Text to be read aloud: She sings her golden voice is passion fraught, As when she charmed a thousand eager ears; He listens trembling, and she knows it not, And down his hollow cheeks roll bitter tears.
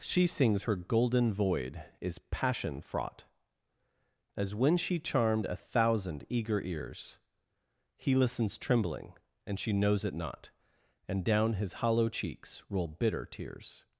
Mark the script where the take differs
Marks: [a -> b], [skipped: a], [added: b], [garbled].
She sings her golden [voice -> void] is passion fraught, As when she charmed a thousand eager ears; He listens trembling, and she knows it not, And down his hollow cheeks roll bitter tears.